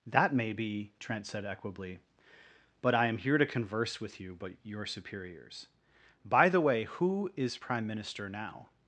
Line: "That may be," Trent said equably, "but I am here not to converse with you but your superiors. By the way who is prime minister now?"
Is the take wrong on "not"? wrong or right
wrong